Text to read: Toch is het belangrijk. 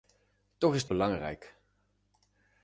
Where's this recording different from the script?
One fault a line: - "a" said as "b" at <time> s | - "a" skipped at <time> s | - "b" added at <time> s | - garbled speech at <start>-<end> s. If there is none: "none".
none